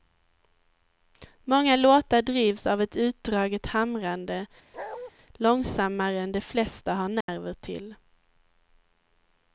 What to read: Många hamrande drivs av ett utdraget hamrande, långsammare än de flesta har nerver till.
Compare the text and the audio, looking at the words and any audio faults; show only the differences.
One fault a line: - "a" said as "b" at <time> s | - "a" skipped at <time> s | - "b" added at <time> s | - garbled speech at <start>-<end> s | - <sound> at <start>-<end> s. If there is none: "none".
- "hamrande" said as "låtar" at 1.8 s
- bark at 4.7-5.1 s
- dropout at 7.2-7.3 s